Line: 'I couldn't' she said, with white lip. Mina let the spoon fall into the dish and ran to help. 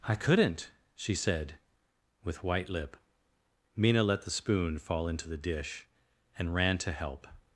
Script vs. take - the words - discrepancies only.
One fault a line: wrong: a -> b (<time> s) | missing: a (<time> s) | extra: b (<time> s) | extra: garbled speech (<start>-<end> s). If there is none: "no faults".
no faults